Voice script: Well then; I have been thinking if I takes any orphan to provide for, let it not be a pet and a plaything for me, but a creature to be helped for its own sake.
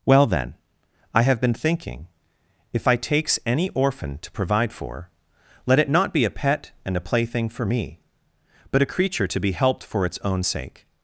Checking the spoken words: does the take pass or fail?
pass